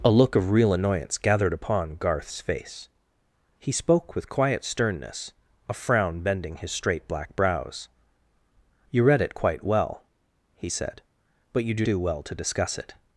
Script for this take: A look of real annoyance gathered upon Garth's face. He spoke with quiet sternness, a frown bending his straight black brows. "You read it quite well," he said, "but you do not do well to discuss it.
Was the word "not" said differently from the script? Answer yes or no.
yes